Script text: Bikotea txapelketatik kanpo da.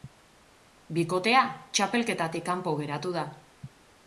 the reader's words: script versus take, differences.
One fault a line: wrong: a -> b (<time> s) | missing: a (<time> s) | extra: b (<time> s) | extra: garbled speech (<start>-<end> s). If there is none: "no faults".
extra: geratu (2.8 s)